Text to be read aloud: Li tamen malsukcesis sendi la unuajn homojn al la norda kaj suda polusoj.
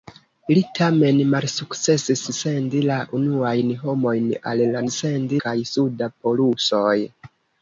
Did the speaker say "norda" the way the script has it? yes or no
no